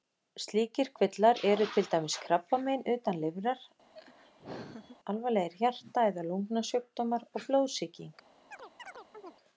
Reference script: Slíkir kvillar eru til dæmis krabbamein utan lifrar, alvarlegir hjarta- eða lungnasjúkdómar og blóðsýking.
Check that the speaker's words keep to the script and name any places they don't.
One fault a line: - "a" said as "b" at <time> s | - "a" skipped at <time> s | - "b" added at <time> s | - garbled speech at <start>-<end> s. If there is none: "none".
none